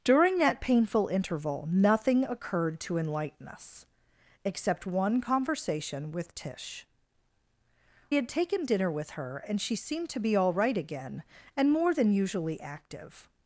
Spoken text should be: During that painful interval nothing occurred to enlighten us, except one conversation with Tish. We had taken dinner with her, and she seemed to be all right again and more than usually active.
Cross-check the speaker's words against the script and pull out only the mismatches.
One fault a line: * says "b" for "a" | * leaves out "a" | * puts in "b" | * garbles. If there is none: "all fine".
* leaves out "We"